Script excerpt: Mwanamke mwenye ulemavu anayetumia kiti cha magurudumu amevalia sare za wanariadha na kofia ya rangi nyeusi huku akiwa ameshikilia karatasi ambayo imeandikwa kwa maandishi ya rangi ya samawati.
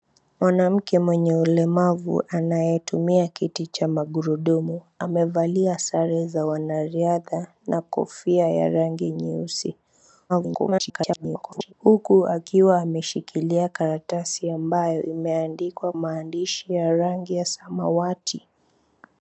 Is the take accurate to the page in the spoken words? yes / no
no